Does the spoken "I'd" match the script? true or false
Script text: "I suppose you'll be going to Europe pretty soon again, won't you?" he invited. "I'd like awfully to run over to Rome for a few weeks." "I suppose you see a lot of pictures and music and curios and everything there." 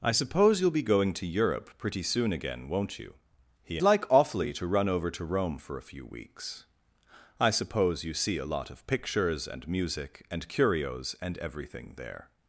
false